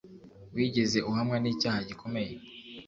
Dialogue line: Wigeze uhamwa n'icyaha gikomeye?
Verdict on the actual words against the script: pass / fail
pass